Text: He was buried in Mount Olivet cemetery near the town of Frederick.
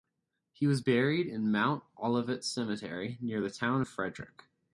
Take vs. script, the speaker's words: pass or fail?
pass